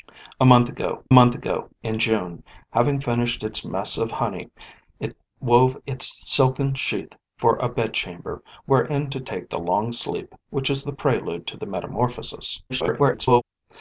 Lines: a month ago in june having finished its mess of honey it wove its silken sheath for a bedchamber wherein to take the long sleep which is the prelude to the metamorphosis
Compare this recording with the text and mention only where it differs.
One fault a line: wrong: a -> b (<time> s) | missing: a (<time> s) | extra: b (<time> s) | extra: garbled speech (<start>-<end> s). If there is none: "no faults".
extra: month ago (1.1 s)
extra: garbled speech (12.7-13.4 s)